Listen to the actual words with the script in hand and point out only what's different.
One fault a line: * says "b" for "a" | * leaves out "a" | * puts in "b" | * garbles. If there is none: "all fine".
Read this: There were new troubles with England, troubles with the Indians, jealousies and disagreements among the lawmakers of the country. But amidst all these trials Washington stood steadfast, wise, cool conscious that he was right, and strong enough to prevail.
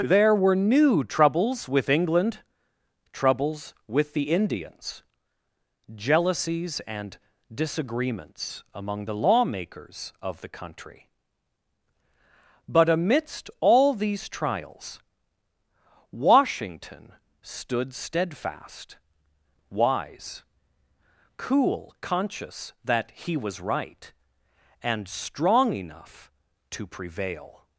all fine